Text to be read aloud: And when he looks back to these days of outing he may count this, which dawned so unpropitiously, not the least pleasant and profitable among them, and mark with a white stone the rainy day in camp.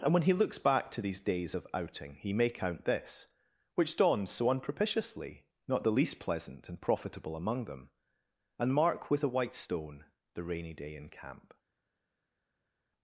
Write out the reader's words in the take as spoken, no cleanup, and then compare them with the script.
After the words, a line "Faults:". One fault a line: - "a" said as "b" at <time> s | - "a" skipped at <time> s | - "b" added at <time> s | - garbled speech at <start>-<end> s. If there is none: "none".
And when he looks back to these days of outing he may count this, which dawned so unpropitiously, not the least pleasant and profitable among them, and mark with a white stone the rainy day in camp.
Faults:
none